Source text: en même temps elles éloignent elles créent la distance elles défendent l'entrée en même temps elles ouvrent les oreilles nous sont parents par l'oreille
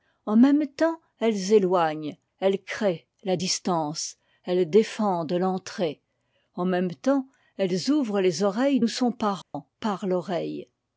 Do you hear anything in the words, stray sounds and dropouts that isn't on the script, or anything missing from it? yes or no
yes